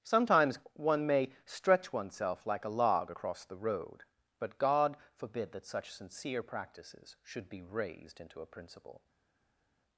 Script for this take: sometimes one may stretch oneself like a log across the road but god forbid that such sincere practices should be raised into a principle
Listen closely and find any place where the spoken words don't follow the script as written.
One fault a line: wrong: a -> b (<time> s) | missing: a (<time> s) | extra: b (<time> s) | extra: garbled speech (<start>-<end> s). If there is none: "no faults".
no faults